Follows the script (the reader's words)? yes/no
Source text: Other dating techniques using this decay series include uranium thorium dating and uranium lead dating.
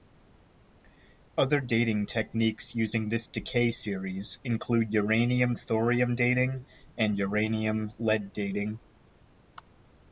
yes